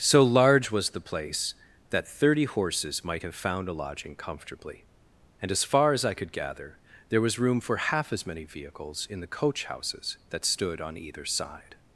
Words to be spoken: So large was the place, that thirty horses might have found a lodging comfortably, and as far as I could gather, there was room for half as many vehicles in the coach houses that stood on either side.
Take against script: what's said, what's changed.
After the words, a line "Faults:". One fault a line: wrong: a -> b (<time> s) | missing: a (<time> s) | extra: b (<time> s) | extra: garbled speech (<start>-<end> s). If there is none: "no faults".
So large was the place, that thirty horses might have found a lodging comfortably, and as far as I could gather, there was room for half as many vehicles in the coach houses that stood on either side.
Faults:
no faults